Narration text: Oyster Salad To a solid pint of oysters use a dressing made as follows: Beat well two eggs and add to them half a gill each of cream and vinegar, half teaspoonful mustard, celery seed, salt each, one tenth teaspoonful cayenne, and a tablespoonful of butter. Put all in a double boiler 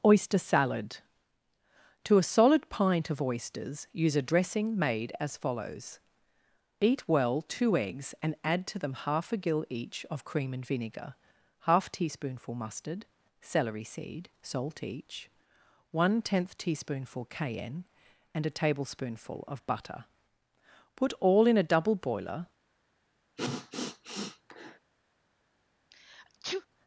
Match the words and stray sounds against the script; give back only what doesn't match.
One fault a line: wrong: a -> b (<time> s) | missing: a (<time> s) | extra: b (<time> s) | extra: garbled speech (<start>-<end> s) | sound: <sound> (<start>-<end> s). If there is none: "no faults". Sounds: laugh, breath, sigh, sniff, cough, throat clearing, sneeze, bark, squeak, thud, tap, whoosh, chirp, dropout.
sound: sniff (23.4-24.8 s)
sound: sneeze (25.9-26.7 s)